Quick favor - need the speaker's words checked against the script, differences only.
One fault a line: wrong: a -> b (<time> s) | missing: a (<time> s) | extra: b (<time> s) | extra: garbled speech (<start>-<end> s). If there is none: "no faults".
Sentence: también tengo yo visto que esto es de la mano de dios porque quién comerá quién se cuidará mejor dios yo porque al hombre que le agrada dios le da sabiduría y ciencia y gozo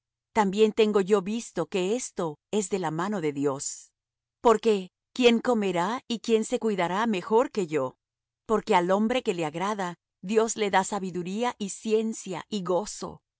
extra: y (6.1 s)
wrong: dios -> que (7.5 s)